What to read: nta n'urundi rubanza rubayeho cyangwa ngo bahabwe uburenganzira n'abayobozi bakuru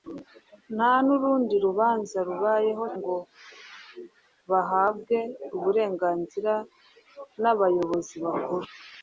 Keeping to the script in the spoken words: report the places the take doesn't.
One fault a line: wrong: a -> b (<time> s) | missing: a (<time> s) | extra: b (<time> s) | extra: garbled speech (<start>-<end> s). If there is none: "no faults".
missing: cyangwa (2.9 s)